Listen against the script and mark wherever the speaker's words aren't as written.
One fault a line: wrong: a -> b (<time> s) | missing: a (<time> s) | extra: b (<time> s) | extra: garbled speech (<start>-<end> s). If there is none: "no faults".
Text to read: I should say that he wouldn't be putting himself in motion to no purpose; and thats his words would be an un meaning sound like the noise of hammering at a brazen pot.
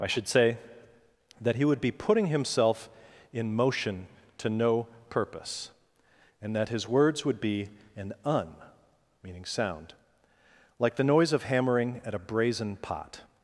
wrong: wouldn't -> would (1.6 s)
wrong: thats -> that (6.6 s)